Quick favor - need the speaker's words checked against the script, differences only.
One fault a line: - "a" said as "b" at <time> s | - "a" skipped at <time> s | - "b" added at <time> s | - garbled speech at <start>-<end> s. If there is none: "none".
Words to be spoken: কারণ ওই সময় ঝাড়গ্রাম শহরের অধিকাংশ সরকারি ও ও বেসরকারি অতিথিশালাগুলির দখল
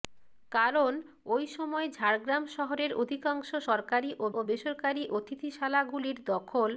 none